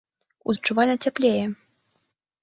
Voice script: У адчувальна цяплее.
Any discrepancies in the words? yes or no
no